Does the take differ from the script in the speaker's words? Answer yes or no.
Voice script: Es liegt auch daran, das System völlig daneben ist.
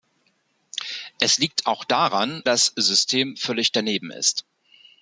no